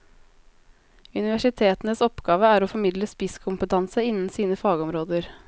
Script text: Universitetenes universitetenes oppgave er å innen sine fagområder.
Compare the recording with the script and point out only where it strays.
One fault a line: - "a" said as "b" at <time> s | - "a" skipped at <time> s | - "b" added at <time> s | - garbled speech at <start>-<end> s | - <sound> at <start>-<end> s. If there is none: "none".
- "universitetenes" skipped at 2.0 s
- "formidle spisskompetanse" added at 2.7 s